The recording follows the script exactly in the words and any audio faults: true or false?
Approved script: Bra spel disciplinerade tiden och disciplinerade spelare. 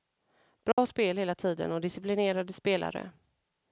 false